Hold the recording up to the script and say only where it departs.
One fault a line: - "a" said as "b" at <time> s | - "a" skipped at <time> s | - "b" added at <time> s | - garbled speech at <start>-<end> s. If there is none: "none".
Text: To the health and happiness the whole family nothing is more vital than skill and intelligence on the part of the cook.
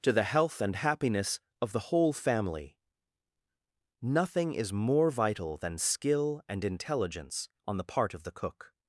- "of" added at 1.6 s